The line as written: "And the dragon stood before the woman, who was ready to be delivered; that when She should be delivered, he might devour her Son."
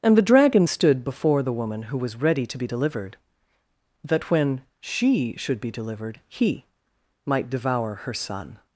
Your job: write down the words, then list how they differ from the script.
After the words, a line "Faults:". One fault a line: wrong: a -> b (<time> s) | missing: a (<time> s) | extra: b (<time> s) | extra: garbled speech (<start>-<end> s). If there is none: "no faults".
"And the dragon stood before the woman, who was ready to be delivered; that when She should be delivered, he might devour her Son."
Faults:
no faults